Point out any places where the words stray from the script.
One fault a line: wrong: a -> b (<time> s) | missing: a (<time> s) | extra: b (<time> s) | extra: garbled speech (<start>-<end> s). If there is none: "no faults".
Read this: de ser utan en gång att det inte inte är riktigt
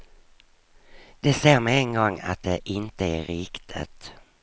wrong: utan -> med (1.6 s)
missing: inte (3.0 s)